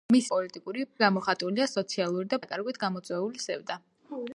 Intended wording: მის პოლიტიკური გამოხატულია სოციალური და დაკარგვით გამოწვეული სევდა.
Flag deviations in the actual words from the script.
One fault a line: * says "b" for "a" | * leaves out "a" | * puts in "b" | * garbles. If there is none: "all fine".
all fine